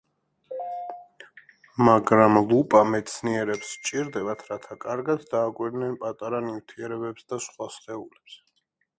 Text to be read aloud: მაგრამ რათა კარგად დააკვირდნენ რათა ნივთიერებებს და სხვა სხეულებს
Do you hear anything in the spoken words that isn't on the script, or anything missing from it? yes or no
yes